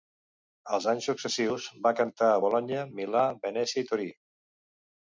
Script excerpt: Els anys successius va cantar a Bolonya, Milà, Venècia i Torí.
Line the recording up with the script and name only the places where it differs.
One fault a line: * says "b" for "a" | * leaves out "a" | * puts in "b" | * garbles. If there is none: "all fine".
all fine